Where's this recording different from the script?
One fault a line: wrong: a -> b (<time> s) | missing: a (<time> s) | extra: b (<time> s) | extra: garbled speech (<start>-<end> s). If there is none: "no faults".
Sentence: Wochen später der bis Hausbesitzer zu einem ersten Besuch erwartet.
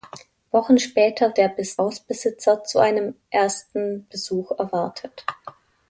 no faults